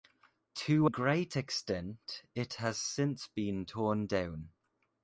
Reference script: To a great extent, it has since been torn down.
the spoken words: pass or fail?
fail